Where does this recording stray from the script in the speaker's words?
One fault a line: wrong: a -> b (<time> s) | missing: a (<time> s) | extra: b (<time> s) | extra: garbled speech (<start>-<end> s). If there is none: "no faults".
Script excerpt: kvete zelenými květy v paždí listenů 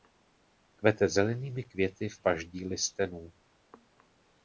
no faults